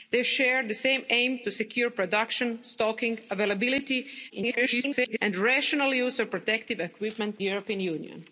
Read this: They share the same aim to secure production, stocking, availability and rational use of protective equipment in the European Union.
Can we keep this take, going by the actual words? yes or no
no